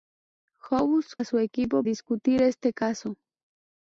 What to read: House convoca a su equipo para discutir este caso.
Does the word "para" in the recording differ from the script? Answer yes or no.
yes